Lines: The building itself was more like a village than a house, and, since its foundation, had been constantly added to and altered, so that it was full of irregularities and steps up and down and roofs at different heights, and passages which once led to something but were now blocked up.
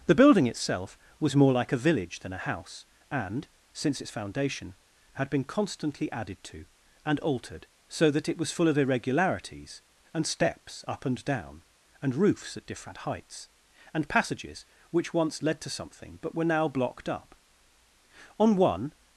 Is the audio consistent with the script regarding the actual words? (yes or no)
no